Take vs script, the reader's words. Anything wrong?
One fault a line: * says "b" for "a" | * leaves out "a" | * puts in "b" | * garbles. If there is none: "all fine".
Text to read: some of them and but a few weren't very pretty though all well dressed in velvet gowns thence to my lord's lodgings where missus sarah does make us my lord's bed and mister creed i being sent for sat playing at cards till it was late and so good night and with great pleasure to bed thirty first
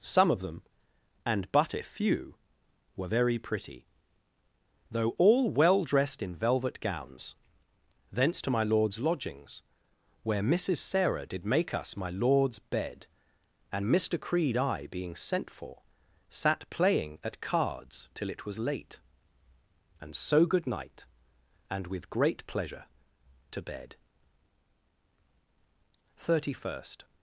* says "were" for "weren't"
* says "did" for "does"